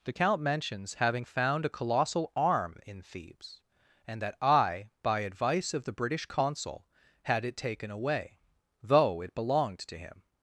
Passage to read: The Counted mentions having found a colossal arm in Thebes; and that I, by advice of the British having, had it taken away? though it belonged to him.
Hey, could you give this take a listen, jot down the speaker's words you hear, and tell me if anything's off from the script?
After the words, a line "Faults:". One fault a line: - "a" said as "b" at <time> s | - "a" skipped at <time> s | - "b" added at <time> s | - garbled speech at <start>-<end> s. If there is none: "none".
The Count mentions having found a colossal arm in Thebes; and that I, by advice of the British consul, had it taken away? though it belonged to him.
Faults:
- "Counted" said as "Count" at 0.1 s
- "having" said as "consul" at 6.2 s